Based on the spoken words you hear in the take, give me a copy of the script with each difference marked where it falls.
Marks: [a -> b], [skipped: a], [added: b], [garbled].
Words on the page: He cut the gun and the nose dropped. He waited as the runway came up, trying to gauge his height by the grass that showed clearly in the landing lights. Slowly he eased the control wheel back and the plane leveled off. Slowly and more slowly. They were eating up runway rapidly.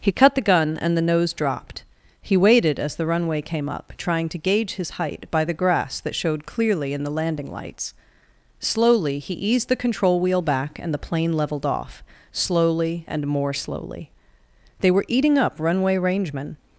He cut the gun and the nose dropped. He waited as the runway came up, trying to gauge his height by the grass that showed clearly in the landing lights. Slowly he eased the control wheel back and the plane leveled off. Slowly and more slowly. They were eating up runway [rapidly. -> rangemen]